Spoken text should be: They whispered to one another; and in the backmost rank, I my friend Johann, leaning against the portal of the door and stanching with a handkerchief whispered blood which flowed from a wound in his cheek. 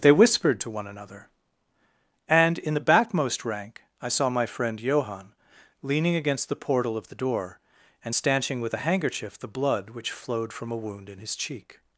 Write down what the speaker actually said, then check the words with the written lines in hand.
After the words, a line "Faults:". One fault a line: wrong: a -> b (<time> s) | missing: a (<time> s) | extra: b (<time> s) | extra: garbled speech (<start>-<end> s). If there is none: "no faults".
They whispered to one another; and in the backmost rank, I saw my friend Johann, leaning against the portal of the door and stanching with a handkerchief the blood which flowed from a wound in his cheek.
Faults:
extra: saw (4.1 s)
wrong: whispered -> the (9.4 s)